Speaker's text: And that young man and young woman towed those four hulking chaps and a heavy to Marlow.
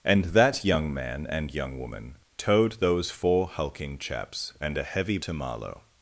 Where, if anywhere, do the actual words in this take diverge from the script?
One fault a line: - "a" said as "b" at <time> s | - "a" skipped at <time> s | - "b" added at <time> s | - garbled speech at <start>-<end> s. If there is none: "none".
none